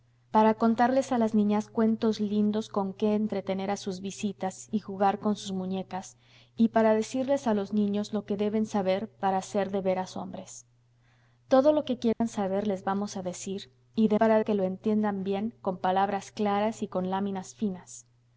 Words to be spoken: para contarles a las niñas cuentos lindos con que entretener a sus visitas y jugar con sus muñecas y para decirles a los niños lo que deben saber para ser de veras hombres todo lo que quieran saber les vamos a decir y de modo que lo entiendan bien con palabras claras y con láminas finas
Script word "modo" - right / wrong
wrong